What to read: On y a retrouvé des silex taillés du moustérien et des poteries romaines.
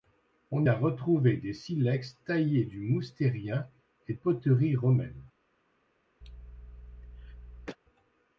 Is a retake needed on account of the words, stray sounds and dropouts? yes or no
yes